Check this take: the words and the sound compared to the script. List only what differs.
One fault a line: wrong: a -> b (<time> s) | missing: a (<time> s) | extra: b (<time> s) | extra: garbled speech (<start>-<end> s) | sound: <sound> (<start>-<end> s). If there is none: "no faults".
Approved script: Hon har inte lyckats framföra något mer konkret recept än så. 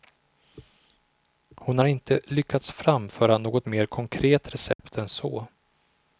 sound: dropout (4.7-4.8 s)